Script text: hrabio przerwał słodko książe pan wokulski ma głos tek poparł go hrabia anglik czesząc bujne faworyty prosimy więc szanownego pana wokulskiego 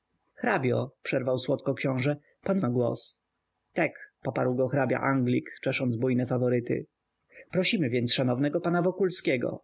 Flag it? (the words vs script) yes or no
yes